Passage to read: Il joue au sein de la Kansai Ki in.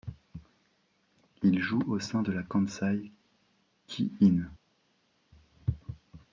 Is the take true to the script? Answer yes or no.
yes